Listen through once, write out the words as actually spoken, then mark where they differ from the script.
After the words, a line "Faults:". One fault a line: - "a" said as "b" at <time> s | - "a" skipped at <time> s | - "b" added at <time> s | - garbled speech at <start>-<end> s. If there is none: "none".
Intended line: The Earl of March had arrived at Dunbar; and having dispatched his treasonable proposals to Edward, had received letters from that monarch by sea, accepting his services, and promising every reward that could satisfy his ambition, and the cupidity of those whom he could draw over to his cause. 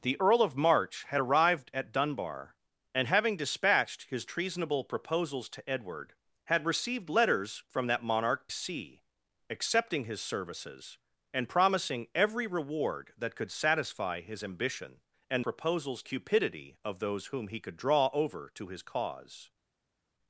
The Earl of March had arrived at Dunbar; and having dispatched his treasonable proposals to Edward, had received letters from that monarch sea, accepting his services, and promising every reward that could satisfy his ambition, and proposals cupidity of those whom he could draw over to his cause.
Faults:
- "by" skipped at 8.5 s
- "the" said as "proposals" at 15.4 s